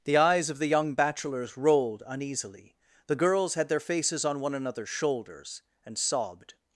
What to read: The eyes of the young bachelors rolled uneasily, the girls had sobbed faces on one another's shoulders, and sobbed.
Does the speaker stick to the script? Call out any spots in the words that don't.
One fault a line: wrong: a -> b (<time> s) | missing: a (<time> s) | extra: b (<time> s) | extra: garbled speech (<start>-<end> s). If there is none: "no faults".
wrong: sobbed -> their (3.7 s)